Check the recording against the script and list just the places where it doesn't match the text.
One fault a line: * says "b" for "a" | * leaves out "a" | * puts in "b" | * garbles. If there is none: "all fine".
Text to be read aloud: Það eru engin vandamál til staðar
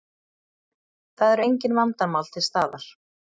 all fine